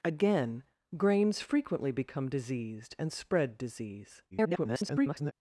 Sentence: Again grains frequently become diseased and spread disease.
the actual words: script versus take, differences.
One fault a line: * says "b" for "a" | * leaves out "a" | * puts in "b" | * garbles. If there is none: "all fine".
* garbles